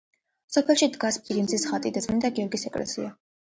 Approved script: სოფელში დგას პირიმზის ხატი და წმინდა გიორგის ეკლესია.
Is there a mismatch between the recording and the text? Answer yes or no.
no